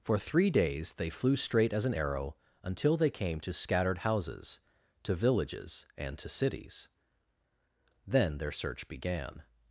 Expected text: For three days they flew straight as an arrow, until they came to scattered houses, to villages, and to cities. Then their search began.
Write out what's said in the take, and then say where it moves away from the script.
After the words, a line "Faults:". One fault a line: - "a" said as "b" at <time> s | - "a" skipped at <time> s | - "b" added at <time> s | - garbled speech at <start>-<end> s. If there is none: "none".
For three days they flew straight as an arrow, until they came to scattered houses, to villages, and to cities. Then their search began.
Faults:
none